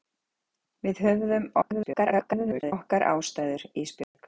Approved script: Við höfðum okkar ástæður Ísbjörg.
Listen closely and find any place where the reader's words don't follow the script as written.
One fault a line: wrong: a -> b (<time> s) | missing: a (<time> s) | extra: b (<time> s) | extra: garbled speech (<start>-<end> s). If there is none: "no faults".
extra: garbled speech (1.6-2.7 s)